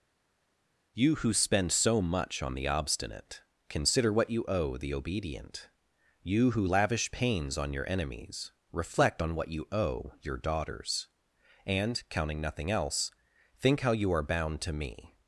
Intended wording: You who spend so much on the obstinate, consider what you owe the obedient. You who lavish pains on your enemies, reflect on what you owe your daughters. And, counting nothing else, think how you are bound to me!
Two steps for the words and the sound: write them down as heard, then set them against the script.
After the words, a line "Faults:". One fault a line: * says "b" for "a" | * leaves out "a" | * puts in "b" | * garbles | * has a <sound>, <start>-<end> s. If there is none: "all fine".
You who spend so much on the obstinate, consider what you owe the obedient. You who lavish pains on your enemies, reflect on what you owe your daughters. And, counting nothing else, think how you are bound to me!
Faults:
all fine